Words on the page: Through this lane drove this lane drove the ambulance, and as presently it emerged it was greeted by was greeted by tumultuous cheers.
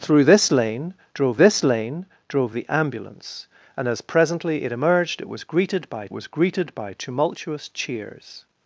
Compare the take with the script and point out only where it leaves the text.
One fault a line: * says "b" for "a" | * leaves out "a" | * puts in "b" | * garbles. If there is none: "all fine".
all fine